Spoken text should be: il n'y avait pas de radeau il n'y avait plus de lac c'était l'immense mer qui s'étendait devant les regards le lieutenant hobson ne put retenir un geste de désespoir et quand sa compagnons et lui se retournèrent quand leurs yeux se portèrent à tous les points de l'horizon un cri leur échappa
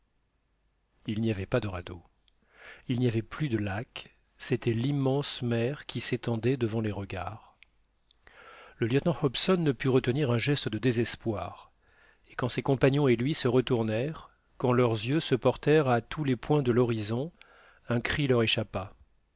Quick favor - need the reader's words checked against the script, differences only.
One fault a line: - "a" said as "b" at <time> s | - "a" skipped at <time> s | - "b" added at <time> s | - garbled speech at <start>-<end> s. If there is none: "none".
- "sa" said as "ses" at 12.5 s